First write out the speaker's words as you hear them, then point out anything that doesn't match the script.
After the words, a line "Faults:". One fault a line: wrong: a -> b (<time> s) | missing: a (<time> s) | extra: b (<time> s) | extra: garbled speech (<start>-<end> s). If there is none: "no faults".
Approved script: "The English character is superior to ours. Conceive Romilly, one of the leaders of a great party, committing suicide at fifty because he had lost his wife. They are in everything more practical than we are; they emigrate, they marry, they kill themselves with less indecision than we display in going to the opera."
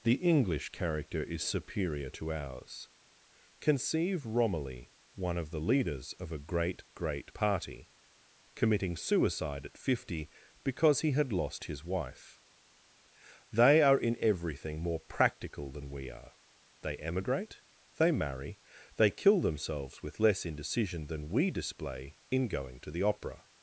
"The English character is superior to ours. Conceive Romilly, one of the leaders of a great great party, committing suicide at fifty because he had lost his wife. They are in everything more practical than we are; they emigrate, they marry, they kill themselves with less indecision than we display in going to the opera."
Faults:
extra: great (7.0 s)